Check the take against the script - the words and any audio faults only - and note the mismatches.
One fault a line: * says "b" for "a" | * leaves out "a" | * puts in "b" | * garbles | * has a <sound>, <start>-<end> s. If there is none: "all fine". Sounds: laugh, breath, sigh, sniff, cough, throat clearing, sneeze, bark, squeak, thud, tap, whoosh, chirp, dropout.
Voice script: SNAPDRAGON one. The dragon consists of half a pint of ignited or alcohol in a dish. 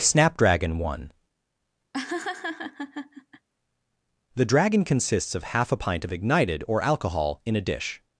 * has a laugh, 1.9-3.5 s